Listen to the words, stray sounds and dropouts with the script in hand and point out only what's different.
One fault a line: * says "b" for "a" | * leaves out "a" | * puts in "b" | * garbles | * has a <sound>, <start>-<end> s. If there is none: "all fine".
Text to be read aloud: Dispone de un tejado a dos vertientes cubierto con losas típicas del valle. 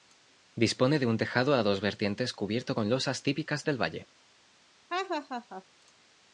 * has a laugh, 4.9-5.6 s